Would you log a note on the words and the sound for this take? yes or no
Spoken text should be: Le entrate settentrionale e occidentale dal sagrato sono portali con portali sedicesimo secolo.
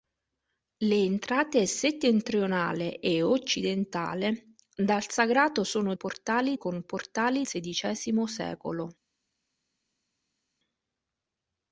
no